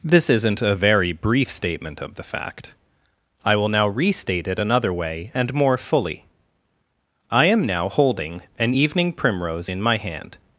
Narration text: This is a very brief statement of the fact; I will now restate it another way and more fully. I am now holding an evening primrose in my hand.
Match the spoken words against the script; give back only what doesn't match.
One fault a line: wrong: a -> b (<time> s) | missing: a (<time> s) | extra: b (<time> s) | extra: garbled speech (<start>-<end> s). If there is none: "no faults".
wrong: is -> isn't (0.3 s)